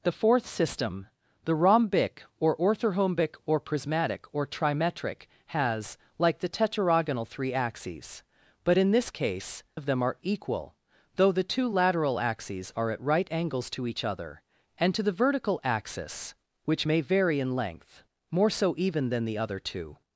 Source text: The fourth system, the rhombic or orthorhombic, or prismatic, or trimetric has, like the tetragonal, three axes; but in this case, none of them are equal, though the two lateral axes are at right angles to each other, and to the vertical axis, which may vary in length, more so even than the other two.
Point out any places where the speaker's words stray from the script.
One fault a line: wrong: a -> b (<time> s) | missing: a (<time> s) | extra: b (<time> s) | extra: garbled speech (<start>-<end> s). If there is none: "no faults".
missing: none (9.6 s)